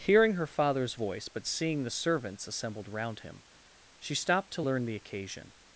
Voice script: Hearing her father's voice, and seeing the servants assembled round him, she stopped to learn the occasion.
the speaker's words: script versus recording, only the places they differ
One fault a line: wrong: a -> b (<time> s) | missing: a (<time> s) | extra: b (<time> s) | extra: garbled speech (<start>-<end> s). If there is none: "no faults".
wrong: and -> but (1.3 s)